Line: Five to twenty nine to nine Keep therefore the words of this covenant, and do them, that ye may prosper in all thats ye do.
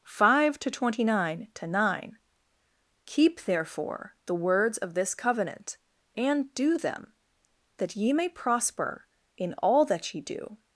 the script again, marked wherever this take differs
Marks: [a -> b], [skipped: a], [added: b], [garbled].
Five to twenty nine to nine Keep therefore the words of this covenant, and do them, that ye may prosper in all [thats -> that] ye do.